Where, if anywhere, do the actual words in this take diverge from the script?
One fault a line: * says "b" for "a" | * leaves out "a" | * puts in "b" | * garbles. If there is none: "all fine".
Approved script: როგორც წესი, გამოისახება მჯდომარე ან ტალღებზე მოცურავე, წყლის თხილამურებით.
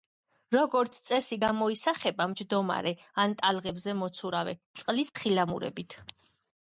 all fine